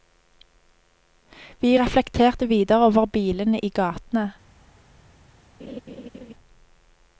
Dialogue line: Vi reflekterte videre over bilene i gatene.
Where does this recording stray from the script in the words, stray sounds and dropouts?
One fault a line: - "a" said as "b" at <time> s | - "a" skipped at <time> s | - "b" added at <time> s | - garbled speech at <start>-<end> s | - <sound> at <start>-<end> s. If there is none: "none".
- laugh at 5.6-6.3 s